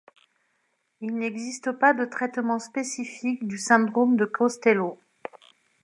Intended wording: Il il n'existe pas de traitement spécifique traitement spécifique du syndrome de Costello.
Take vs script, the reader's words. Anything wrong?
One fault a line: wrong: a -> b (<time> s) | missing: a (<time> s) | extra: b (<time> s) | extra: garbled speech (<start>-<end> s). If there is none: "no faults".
missing: il (1.1 s)
missing: traitement spécifique (3.5 s)